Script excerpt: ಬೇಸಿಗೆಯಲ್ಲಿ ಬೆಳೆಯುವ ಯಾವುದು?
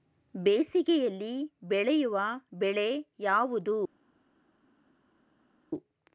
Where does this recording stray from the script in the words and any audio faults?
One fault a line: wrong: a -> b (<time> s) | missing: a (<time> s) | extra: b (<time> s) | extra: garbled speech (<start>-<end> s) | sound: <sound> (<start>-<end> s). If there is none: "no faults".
extra: ಬೆಳೆ (2.5 s)